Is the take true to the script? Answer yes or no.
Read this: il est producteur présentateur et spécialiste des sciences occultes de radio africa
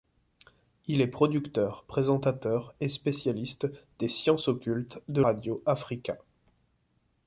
yes